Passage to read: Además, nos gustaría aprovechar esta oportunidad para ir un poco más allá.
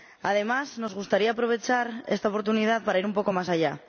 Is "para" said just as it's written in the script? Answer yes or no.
yes